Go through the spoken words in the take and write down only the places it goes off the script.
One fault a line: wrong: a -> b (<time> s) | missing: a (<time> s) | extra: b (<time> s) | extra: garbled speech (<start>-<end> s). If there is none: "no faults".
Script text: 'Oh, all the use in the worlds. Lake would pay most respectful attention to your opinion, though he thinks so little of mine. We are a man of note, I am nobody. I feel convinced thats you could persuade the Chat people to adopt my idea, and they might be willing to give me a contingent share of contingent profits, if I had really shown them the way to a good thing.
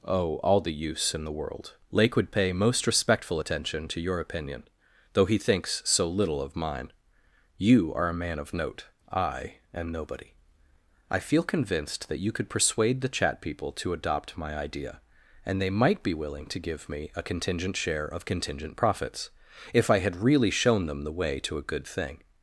wrong: worlds -> world (1.3 s)
wrong: We -> You (7.6 s)
wrong: thats -> that (12.1 s)